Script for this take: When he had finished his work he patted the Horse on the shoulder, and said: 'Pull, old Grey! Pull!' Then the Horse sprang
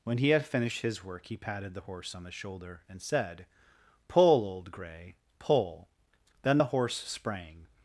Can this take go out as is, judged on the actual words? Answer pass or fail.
pass